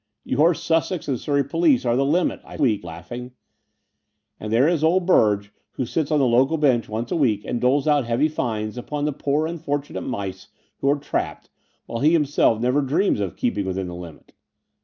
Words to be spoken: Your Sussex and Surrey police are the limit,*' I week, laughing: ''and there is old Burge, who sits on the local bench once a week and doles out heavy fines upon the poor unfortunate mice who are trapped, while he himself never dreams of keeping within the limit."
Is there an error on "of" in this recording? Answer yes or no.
no